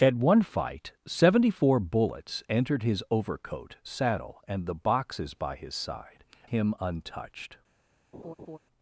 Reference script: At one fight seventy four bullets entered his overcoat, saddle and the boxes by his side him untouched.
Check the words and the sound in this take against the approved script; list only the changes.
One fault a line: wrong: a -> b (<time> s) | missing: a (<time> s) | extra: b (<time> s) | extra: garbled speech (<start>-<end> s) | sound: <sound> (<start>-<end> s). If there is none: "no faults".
sound: laugh (8.1-8.6 s)